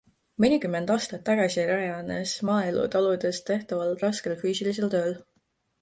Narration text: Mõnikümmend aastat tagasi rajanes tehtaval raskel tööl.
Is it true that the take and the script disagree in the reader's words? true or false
true